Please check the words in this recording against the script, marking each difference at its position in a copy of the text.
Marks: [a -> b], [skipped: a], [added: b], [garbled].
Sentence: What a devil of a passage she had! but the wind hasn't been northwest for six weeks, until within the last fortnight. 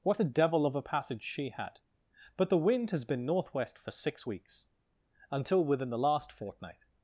What a devil of a passage she had! but the wind [hasn't -> has] been northwest for six weeks, until within the last fortnight.